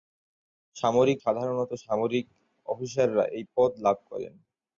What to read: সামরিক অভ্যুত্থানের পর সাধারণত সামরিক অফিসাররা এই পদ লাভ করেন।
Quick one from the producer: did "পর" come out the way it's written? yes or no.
no